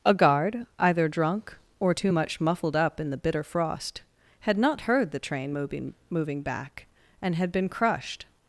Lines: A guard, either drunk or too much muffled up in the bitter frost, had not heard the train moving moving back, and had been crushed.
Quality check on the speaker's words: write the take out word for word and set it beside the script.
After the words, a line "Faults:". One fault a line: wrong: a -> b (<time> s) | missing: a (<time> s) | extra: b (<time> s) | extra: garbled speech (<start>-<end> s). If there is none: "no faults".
A guard, either drunk or too much muffled up in the bitter frost, had not heard the train moving moving back, and had been crushed.
Faults:
no faults